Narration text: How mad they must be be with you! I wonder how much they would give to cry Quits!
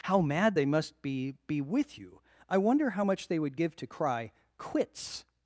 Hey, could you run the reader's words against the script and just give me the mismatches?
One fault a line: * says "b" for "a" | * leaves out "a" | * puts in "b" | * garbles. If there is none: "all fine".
all fine